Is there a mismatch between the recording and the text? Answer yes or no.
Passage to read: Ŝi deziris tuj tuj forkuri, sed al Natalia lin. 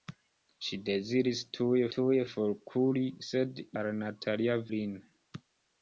no